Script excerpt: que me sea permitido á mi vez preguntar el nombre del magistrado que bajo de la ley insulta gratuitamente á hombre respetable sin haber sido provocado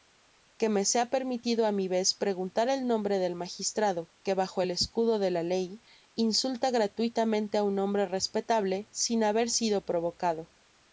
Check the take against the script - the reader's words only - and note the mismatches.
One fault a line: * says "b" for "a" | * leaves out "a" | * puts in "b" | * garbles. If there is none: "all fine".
* puts in "el escudo"
* puts in "un"